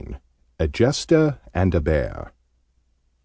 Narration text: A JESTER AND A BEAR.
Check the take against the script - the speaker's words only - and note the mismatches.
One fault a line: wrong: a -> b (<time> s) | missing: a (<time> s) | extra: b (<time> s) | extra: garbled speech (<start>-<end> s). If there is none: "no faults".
no faults